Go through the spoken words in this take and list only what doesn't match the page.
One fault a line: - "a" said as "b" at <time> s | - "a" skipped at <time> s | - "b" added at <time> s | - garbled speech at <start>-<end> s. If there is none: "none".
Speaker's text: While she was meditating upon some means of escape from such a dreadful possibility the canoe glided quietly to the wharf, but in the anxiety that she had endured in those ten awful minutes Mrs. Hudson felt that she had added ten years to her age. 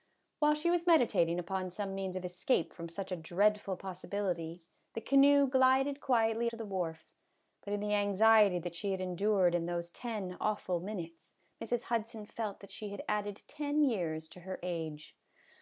none